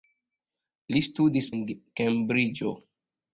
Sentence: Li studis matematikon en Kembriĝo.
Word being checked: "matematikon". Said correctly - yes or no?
no